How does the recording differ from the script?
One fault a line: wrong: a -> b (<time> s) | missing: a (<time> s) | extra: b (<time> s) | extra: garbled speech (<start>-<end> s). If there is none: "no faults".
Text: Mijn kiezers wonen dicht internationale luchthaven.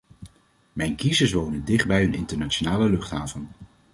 extra: bij een (1.8 s)